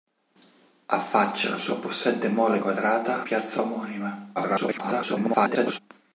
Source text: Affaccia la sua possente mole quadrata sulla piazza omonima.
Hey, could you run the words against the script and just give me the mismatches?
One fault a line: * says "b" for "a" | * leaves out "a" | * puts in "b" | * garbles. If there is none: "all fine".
* leaves out "sulla"
* garbles